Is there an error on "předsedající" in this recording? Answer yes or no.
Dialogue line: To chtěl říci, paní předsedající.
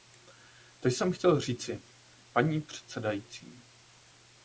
no